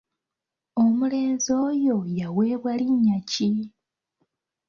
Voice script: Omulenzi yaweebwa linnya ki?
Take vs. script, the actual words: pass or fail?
fail